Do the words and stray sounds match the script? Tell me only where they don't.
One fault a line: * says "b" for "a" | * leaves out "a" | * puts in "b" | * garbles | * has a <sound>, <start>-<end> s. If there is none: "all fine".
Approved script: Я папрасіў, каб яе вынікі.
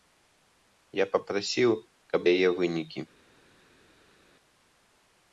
all fine